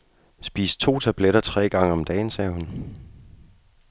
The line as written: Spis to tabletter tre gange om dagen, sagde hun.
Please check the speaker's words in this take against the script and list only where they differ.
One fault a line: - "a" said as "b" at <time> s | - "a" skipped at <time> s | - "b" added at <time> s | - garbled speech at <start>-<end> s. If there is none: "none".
none